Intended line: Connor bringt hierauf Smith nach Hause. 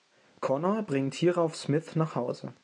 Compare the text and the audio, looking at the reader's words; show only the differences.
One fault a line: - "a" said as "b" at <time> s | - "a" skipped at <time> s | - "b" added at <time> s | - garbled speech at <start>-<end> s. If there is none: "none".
none